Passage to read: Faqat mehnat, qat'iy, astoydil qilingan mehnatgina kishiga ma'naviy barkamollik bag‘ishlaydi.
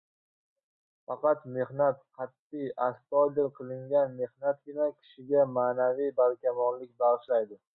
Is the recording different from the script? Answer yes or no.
no